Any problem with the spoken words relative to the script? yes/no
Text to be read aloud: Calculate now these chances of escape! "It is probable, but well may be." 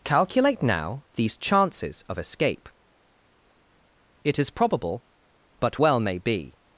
no